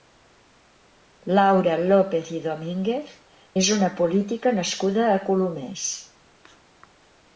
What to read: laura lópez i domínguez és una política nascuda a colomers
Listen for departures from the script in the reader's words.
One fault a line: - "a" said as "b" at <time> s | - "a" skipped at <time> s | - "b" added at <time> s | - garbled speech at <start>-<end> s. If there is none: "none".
none